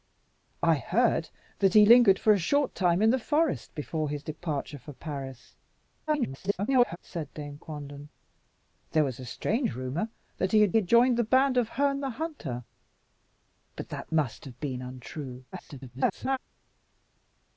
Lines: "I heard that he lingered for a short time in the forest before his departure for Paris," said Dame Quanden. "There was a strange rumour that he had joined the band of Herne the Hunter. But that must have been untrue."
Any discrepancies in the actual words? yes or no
yes